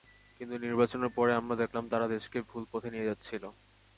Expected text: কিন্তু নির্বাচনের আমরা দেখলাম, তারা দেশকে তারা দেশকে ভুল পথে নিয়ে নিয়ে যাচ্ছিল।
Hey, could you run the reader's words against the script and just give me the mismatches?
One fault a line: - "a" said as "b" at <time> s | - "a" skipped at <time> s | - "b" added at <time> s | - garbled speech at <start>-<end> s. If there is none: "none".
- "পরে" added at 1.2 s
- "তারা দেশকে" skipped at 2.4 s
- "নিয়ে" skipped at 3.1 s